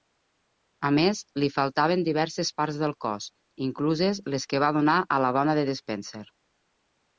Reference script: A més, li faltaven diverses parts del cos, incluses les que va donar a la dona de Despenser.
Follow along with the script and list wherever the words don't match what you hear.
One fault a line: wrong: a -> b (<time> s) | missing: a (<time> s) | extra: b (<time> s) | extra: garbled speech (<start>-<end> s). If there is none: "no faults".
no faults